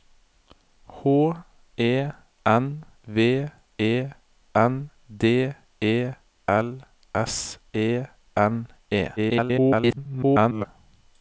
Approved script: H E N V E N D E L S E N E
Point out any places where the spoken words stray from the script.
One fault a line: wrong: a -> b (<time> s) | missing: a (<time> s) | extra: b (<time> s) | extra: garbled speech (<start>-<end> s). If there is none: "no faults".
extra: garbled speech (9.2-10.7 s)